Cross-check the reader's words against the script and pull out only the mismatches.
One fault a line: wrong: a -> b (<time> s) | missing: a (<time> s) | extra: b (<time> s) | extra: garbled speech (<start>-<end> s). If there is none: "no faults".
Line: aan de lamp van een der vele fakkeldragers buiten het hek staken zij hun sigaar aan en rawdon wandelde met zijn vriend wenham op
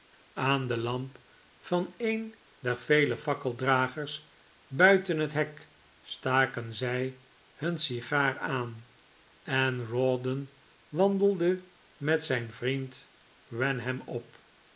no faults